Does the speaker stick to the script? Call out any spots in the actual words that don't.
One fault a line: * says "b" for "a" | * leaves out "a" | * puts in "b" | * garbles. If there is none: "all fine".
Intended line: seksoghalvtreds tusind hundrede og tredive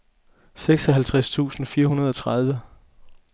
* puts in "fire"